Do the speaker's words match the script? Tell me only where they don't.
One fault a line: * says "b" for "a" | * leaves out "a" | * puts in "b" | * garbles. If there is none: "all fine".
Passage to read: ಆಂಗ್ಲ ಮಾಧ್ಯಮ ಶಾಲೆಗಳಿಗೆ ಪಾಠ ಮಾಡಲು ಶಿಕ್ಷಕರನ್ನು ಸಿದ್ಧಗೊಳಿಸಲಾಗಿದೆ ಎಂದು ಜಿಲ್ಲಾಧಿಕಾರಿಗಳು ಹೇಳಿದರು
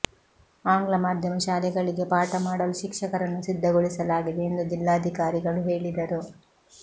all fine